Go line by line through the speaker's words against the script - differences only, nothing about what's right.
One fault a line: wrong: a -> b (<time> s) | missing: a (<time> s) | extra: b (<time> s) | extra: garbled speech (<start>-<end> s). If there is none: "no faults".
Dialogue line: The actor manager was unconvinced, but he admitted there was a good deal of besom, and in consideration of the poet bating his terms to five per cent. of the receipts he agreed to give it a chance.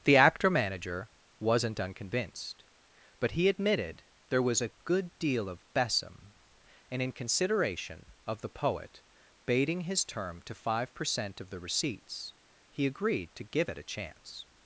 wrong: was -> wasn't (1.4 s)
wrong: terms -> term (10.0 s)